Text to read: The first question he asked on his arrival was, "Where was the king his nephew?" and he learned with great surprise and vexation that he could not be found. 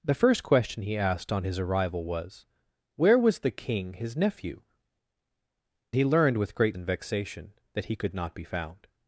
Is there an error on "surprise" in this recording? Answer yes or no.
yes